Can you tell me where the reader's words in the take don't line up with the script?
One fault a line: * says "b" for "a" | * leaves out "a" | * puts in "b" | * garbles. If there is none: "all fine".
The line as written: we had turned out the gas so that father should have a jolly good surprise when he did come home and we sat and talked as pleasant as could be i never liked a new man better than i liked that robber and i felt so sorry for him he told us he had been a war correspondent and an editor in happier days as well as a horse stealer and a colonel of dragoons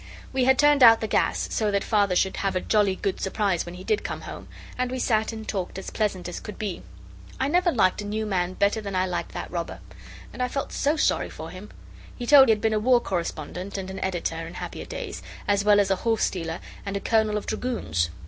* leaves out "us he"